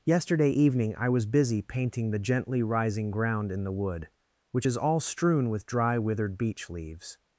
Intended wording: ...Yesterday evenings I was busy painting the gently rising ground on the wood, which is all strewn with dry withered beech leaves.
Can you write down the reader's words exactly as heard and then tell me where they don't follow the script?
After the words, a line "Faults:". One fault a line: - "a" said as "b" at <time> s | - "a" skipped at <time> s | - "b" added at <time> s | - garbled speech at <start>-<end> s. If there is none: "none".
...Yesterday evening I was busy painting the gently rising ground in the wood, which is all strewn with dry withered beech leaves.
Faults:
- "evenings" said as "evening" at 0.5 s
- "on" said as "in" at 3.5 s